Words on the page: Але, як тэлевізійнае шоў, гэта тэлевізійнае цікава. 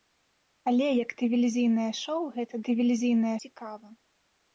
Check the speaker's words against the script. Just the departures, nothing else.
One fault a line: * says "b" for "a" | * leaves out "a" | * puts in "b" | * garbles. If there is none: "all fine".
all fine